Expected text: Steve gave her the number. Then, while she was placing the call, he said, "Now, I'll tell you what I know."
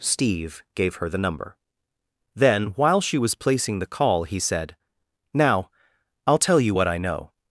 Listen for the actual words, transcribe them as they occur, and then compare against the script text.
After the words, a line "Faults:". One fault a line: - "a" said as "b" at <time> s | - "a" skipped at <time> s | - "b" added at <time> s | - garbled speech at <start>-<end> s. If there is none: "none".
Steve gave her the number. Then, while she was placing the call, he said, "Now, I'll tell you what I know."
Faults:
none